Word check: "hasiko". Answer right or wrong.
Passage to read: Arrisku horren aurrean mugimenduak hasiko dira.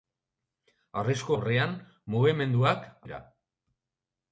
wrong